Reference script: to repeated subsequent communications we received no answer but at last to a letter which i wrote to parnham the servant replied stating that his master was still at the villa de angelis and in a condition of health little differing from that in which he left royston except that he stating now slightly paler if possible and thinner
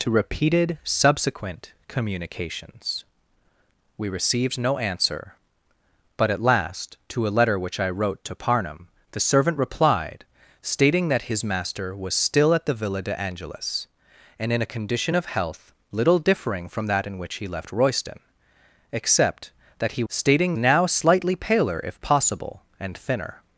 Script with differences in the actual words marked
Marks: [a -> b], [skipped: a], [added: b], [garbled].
to repeated subsequent communications we received no answer but at last to a letter which i wrote to parnham the servant replied stating that his master was still at the villa de angelis and in a condition of health little differing from that in which he left royston except that he stating now slightly paler if possible and thinner